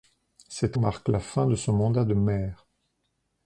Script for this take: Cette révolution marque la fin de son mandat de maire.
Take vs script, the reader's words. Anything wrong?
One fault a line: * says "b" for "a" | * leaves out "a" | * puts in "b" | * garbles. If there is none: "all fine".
* leaves out "révolution"